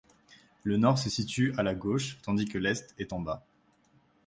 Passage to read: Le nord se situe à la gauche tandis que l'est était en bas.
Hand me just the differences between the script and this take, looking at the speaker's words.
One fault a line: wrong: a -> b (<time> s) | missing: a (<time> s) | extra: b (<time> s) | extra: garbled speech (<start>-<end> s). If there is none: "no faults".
wrong: était -> est (3.0 s)